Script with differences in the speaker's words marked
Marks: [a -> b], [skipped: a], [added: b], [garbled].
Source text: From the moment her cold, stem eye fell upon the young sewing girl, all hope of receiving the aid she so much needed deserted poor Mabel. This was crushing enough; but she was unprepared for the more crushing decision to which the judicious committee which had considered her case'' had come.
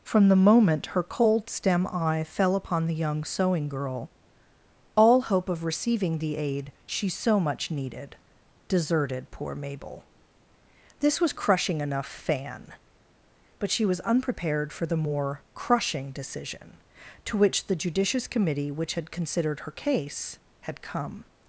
From the moment her cold, stem eye fell upon the young sewing girl, all hope of receiving the aid she so much needed deserted poor Mabel. This was crushing enough; [added: fan] but she was unprepared for the more crushing decision to which the judicious committee which had considered her case'' had come.